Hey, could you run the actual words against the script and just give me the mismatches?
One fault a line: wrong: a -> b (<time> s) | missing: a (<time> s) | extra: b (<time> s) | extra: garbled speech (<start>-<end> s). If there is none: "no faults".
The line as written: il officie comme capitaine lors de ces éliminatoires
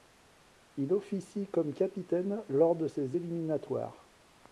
no faults